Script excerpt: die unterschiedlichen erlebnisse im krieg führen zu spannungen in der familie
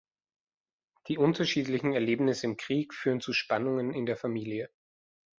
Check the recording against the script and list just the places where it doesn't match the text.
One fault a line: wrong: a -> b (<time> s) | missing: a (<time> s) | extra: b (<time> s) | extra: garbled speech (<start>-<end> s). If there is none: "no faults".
no faults